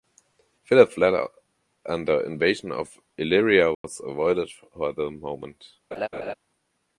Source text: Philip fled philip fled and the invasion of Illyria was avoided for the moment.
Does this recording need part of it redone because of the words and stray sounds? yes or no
yes